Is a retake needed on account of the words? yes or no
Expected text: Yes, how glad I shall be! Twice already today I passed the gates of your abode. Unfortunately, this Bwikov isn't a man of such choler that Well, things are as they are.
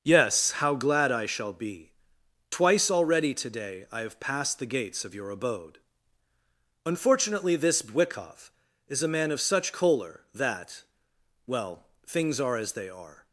yes